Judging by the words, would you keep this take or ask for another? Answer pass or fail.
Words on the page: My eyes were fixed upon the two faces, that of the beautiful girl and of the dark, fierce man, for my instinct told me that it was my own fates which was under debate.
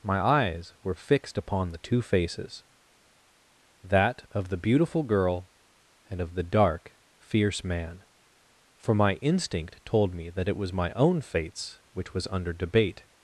pass